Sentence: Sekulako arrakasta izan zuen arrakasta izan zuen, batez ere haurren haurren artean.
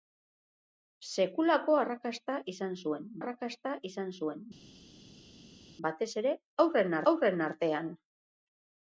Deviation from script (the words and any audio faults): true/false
false